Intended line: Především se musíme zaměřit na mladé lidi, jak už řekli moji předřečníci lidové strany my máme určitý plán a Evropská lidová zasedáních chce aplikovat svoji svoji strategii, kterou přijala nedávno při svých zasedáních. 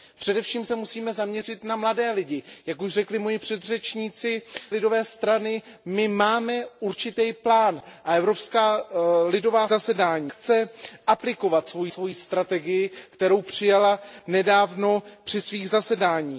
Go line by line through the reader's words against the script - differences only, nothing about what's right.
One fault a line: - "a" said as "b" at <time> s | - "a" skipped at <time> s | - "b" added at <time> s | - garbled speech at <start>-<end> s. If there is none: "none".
none